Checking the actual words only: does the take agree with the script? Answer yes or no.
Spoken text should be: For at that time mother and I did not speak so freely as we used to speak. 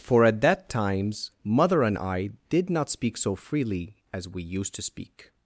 no